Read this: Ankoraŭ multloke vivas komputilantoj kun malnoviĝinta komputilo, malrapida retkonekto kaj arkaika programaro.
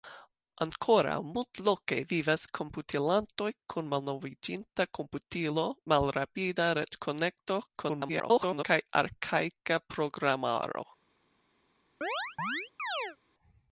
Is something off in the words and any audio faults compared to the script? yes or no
yes